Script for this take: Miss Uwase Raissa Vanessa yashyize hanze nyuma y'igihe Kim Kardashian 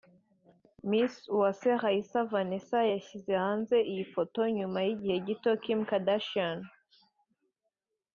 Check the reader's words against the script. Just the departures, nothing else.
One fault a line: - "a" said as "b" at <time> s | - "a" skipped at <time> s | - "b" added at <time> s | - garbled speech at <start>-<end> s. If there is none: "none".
- "iyi foto" added at 3.9 s
- "gito" added at 5.3 s